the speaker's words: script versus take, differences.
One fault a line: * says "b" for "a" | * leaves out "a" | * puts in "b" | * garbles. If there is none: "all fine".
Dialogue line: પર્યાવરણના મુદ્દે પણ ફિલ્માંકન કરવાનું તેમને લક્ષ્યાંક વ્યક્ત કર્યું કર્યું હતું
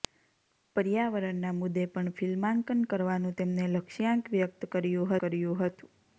all fine